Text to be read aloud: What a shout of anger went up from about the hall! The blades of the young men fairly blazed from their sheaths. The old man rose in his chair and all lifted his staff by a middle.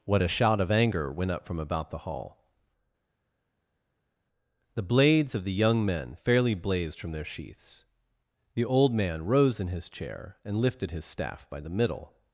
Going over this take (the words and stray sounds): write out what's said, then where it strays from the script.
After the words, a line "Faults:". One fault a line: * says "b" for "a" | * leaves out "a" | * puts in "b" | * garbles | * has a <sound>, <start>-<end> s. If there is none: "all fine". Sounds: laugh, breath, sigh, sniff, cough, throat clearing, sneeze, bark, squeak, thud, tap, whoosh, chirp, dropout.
What a shout of anger went up from about the hall! The blades of the young men fairly blazed from their sheaths. The old man rose in his chair and lifted his staff by the middle.
Faults:
* leaves out "all"
* says "the" for "a"